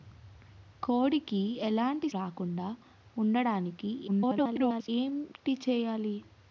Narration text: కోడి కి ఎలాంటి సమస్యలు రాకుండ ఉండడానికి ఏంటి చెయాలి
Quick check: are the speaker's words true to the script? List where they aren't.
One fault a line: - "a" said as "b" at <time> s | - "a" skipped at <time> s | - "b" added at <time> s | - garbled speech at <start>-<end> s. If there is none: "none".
- "సమస్యలు" skipped at 2.1 s
- garbled speech at 4.1-4.9 s